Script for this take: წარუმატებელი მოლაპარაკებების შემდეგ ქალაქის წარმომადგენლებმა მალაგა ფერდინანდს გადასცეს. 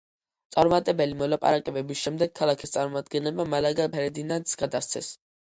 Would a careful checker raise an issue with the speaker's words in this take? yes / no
no